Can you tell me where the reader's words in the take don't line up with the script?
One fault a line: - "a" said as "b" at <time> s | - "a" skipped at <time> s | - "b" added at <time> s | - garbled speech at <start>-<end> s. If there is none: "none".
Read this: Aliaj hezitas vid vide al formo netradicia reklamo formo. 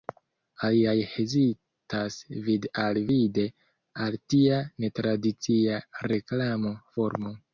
- "al" added at 2.9 s
- "formo" said as "tia" at 4.3 s